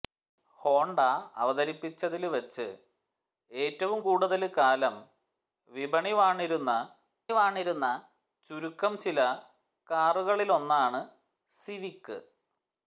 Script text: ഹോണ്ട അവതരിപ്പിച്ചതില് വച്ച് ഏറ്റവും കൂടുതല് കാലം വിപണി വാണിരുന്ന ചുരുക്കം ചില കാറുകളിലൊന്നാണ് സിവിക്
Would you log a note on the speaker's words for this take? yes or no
yes